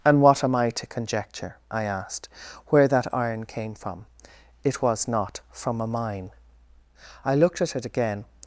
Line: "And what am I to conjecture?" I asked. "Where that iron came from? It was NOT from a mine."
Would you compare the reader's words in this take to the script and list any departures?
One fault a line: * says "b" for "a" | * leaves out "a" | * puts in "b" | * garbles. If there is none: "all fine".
* puts in "I looked at it again"